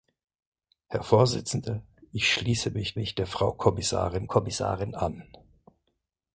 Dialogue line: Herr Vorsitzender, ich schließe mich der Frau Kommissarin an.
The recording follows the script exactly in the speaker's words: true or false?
false